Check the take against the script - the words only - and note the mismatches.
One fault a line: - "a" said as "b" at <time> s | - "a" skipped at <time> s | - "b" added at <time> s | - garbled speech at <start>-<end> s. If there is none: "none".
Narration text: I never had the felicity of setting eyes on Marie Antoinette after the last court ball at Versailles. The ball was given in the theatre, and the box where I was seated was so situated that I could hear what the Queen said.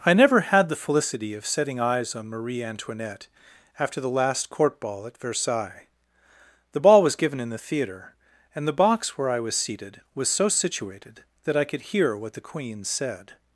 none